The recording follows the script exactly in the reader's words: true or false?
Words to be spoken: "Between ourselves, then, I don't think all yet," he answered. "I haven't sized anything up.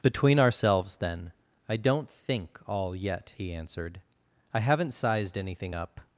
true